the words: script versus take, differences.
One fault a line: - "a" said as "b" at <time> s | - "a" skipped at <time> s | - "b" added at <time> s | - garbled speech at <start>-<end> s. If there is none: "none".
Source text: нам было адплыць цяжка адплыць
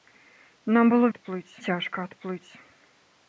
none